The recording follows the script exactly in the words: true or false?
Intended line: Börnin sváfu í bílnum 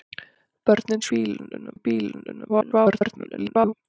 false